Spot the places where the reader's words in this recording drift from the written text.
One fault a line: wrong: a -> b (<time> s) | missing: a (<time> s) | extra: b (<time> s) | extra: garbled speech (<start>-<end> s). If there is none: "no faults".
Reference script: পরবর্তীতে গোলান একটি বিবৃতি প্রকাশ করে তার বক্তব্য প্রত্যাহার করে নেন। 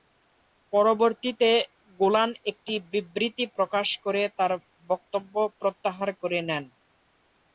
no faults